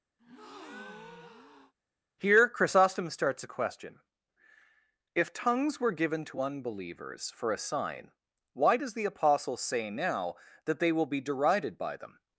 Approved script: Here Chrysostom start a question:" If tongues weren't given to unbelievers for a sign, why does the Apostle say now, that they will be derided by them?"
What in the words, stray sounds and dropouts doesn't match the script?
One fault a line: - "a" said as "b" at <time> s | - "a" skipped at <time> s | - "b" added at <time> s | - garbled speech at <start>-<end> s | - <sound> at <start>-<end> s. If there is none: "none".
- breath at 0.2-1.7 s
- "start" said as "starts" at 3.1 s
- "weren't" said as "were" at 5.8 s